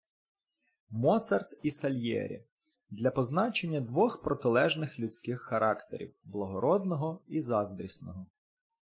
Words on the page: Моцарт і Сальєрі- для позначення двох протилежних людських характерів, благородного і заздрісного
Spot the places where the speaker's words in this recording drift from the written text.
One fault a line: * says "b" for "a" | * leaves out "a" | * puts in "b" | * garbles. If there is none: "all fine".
all fine